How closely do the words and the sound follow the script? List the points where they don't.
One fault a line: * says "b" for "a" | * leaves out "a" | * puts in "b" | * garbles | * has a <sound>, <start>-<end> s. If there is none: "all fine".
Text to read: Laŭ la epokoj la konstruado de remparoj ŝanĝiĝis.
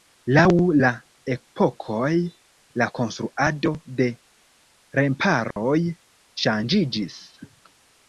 * has a dropout, 5.5-5.6 s